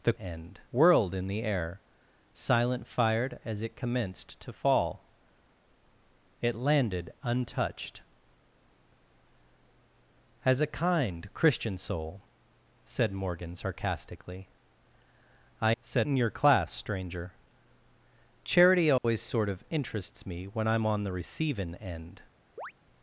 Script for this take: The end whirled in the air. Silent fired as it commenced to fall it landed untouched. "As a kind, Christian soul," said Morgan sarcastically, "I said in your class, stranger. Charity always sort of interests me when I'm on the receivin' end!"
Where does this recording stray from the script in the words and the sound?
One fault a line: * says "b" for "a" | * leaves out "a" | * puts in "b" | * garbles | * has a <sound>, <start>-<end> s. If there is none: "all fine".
* has a dropout, 19.0-19.0 s
* has a chirp, 22.6-22.7 s